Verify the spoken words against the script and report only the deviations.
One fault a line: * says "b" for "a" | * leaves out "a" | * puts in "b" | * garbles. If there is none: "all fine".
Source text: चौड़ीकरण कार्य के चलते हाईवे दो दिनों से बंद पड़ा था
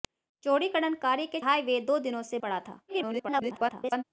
* leaves out "चलते"
* leaves out "बंद"
* garbles